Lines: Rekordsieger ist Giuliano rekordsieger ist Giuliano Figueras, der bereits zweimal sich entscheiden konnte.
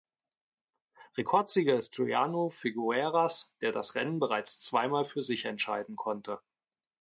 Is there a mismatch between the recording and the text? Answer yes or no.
yes